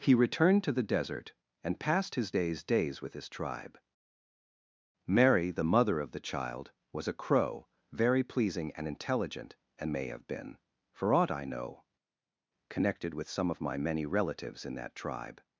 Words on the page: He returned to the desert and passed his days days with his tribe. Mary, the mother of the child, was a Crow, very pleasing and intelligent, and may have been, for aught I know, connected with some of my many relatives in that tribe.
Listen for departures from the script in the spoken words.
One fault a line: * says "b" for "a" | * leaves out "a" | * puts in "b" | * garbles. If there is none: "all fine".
all fine